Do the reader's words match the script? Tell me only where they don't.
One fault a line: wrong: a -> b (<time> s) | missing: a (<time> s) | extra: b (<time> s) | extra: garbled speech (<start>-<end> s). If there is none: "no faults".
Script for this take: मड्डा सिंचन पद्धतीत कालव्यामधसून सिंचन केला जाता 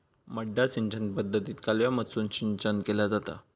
no faults